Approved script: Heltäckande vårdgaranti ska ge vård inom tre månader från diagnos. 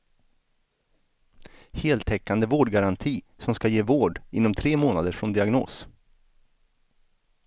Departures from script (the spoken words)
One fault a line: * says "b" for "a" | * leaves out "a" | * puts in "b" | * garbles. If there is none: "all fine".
* puts in "som"